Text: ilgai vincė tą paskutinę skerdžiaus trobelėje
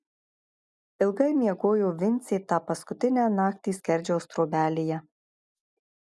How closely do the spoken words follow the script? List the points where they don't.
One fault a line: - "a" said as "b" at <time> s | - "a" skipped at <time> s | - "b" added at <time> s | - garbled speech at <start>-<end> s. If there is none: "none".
- "miegojo" added at 1.4 s
- "naktį" added at 3.3 s